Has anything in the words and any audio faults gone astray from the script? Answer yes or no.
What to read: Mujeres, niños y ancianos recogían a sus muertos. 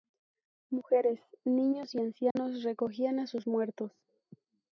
yes